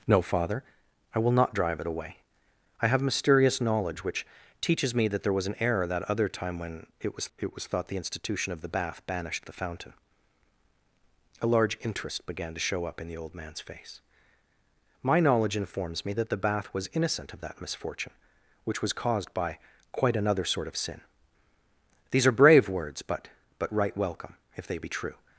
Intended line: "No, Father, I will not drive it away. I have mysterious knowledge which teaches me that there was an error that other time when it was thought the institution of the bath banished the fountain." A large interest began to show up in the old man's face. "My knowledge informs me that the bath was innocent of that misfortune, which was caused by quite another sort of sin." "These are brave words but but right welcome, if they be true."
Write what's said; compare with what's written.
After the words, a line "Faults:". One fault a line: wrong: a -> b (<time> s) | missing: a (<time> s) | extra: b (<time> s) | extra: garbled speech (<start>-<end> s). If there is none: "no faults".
"No, Father, I will not drive it away. I have mysterious knowledge which teaches me that there was an error that other time when it was it was thought the institution of the bath banished the fountain." A large interest began to show up in the old man's face. "My knowledge informs me that the bath was innocent of that misfortune, which was caused by quite another sort of sin." "These are brave words but but right welcome, if they be true."
Faults:
extra: it was (7.4 s)